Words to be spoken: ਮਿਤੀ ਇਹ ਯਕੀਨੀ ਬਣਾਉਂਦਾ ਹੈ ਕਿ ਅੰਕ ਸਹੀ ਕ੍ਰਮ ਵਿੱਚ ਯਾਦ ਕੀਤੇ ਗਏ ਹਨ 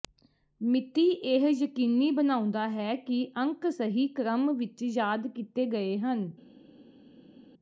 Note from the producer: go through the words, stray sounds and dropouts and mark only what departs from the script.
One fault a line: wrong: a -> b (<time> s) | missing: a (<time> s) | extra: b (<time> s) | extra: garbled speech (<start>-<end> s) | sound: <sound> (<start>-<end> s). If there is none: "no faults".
no faults